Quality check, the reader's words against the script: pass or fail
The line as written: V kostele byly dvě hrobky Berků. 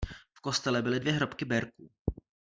pass